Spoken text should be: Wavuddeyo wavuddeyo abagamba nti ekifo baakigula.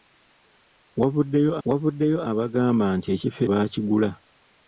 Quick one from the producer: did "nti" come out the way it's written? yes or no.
yes